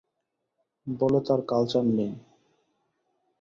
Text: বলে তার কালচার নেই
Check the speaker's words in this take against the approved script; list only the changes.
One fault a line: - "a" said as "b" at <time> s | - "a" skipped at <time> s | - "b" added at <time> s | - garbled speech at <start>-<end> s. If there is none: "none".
none